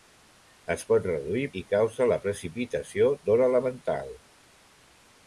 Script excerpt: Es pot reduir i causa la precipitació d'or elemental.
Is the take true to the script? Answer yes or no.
yes